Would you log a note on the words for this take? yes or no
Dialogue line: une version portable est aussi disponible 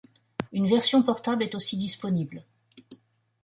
no